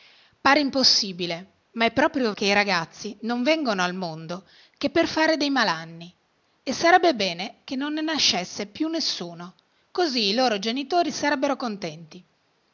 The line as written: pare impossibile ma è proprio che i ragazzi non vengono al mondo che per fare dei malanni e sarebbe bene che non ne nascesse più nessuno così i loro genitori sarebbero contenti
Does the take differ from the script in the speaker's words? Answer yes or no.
no